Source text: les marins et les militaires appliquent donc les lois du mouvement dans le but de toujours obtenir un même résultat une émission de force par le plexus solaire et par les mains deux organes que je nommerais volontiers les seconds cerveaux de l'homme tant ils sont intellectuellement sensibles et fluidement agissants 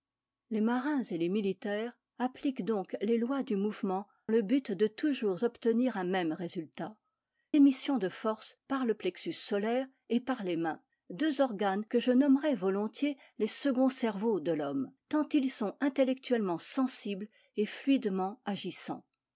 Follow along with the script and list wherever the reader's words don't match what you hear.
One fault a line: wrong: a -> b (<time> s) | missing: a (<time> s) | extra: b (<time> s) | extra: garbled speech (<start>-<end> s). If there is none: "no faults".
missing: dans (4.1 s)
missing: une (7.0 s)